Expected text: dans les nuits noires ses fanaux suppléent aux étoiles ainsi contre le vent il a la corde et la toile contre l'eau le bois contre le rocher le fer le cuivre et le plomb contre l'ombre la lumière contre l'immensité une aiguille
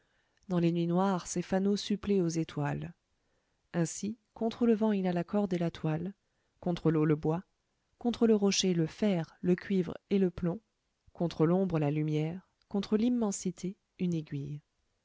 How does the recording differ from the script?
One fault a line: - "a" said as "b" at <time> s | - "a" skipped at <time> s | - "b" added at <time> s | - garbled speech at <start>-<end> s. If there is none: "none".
none